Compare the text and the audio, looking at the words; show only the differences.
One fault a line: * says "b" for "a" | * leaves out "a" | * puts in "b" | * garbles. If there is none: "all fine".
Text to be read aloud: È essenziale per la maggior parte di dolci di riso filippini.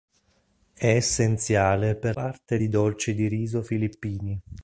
* leaves out "la maggior"